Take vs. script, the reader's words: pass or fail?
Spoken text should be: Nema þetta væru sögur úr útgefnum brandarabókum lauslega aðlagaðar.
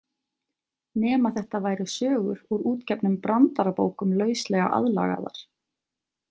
pass